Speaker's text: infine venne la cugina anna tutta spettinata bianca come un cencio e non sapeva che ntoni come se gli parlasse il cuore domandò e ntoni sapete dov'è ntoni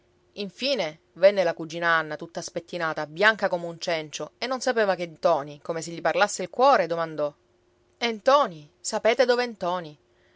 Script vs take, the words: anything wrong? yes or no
no